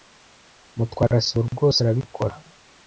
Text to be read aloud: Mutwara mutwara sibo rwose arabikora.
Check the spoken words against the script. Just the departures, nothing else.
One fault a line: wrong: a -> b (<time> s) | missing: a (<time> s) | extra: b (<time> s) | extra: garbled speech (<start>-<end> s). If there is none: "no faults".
missing: mutwara (1.2 s)